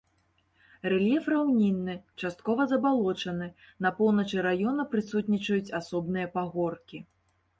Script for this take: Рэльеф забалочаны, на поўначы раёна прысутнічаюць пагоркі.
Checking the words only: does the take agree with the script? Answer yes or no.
no